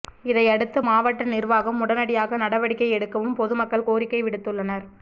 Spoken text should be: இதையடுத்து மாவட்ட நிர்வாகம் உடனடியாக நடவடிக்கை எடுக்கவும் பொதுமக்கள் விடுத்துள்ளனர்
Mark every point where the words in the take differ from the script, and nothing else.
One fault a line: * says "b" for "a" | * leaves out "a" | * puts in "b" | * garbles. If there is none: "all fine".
* puts in "கோரிக்கை"